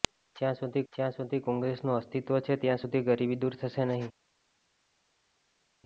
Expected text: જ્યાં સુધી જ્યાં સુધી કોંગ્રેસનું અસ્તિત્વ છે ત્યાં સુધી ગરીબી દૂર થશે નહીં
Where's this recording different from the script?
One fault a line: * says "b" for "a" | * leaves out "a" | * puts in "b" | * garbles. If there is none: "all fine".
all fine